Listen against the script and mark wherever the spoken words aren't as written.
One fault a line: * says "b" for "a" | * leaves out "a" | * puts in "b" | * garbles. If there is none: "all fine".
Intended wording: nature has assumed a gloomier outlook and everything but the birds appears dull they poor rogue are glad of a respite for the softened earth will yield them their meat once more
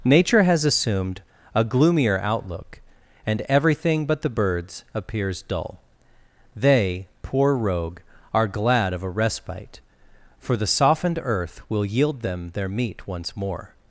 all fine